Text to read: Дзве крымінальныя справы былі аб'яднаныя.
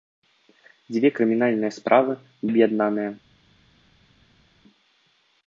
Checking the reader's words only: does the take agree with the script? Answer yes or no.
no